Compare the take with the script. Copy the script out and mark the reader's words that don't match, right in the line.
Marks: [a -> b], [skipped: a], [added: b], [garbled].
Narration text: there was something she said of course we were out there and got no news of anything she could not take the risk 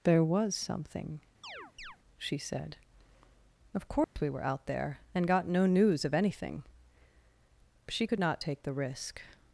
there was something she said of course we were out there and got no news of anything she could not take the risk